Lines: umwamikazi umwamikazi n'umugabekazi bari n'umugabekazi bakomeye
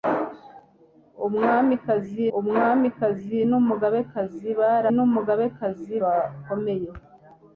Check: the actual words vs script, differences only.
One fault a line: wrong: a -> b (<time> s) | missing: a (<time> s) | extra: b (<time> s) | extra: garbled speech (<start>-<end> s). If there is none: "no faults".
no faults